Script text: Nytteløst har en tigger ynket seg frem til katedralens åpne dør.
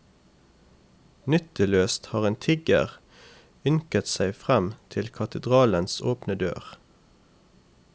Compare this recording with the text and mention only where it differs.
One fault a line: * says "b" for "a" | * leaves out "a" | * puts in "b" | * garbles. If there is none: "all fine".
all fine